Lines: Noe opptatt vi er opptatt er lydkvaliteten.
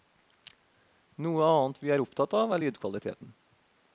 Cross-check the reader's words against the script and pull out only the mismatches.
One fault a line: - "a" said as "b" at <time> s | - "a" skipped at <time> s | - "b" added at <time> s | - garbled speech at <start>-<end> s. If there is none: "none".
- "opptatt" said as "annet" at 1.5 s
- "av" added at 2.4 s